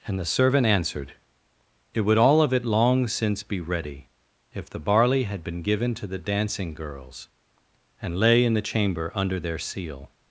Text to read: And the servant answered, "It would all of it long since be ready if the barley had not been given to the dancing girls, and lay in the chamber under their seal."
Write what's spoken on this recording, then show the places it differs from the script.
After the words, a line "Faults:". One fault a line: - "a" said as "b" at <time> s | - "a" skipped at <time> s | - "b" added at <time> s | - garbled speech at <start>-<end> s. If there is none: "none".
And the servant answered, "It would all of it long since be ready if the barley had been given to the dancing girls, and lay in the chamber under their seal."
Faults:
- "not" skipped at 5.4 s